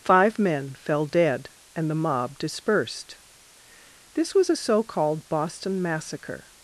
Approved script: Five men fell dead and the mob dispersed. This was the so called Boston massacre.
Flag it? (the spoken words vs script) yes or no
yes